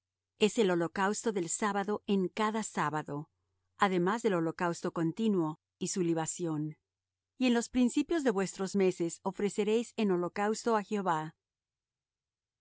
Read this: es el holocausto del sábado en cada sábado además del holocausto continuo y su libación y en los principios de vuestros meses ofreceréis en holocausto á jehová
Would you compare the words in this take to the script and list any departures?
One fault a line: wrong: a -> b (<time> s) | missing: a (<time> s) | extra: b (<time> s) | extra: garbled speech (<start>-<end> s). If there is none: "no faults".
no faults